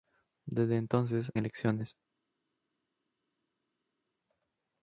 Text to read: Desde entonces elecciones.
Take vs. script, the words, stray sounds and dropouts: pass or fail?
pass